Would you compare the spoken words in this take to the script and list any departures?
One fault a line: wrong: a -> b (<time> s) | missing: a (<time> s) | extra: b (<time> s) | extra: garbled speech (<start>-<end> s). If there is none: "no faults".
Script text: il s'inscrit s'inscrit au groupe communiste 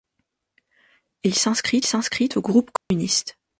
no faults